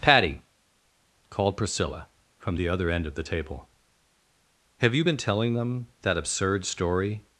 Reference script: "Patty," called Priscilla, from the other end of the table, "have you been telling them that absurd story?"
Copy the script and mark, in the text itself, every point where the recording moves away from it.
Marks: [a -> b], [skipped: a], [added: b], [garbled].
"Patty," called Priscilla, from the other end of the table, "have you been telling them that absurd story?"